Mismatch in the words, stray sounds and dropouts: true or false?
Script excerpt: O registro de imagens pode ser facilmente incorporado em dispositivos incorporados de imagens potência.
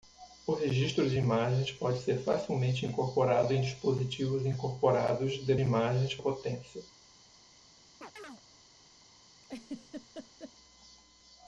true